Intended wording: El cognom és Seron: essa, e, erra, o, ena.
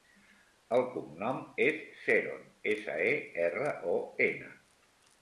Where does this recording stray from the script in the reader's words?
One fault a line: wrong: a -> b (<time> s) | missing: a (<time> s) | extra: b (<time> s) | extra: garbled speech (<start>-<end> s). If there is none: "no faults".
no faults